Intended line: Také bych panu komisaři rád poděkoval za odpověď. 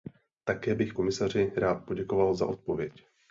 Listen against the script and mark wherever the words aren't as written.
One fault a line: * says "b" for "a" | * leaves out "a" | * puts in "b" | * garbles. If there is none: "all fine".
* leaves out "panu"